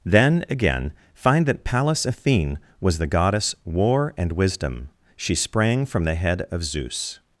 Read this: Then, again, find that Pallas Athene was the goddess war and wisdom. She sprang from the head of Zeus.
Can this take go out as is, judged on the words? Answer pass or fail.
pass